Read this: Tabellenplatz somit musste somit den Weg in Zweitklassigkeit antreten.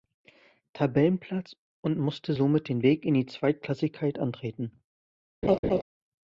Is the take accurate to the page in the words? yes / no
no